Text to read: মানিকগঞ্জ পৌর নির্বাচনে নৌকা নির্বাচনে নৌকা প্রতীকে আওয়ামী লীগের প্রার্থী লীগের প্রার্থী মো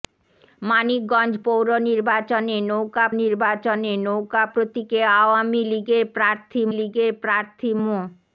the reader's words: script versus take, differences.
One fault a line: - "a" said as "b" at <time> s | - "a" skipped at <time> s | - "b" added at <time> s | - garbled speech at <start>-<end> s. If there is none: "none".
none